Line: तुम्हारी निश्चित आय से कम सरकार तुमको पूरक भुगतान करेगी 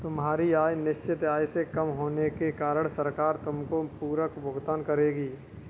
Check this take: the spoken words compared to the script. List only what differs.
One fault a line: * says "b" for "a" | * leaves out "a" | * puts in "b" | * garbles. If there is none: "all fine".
* puts in "आय"
* puts in "होने के कारण"